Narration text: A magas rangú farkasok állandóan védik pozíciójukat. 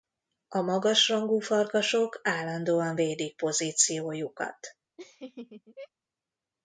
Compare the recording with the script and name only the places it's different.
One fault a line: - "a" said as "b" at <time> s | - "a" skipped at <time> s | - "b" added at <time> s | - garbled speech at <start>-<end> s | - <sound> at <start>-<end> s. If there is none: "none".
- laugh at 5.0-5.9 s